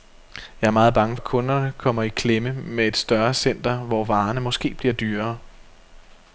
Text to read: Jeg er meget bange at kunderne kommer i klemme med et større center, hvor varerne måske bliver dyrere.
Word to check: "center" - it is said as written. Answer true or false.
true